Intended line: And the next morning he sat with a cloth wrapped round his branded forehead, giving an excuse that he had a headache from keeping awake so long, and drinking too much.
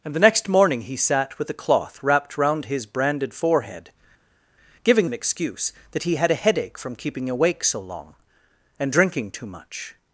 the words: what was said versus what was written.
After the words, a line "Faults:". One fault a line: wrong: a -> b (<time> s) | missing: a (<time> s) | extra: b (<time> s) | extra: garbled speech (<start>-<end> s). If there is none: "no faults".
And the next morning he sat with a cloth wrapped round his branded forehead, giving an excuse that he had a headache from keeping awake so long, and drinking too much.
Faults:
no faults